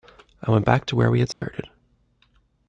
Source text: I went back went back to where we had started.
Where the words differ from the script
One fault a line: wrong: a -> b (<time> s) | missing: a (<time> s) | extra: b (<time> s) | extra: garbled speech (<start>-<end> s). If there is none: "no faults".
missing: went back (0.9 s)